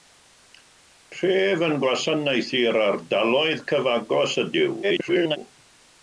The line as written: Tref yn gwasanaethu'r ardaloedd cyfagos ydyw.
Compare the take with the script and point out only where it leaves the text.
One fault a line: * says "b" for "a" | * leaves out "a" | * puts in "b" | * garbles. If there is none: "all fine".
* garbles